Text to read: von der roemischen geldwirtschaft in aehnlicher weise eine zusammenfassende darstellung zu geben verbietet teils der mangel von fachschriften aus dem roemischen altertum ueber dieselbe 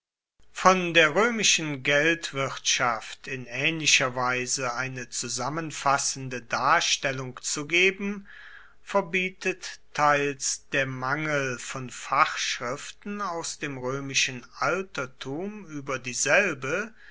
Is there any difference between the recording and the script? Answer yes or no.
no